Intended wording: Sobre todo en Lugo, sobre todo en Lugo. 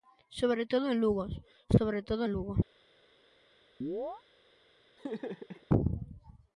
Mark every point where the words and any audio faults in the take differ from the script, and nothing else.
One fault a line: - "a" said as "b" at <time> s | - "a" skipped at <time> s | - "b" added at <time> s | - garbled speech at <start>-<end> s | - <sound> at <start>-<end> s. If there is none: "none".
- chirp at 3.8-4.2 s
- laugh at 5.0-5.7 s